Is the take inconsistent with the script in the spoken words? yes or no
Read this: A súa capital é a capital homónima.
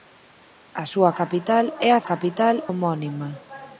no